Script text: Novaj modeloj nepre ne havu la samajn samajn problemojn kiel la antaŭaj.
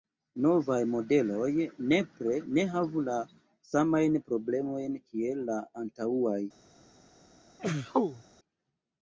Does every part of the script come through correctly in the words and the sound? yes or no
no